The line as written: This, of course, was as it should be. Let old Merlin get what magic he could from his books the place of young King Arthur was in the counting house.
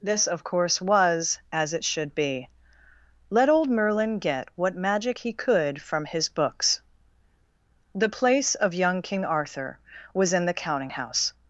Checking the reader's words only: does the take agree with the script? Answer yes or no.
yes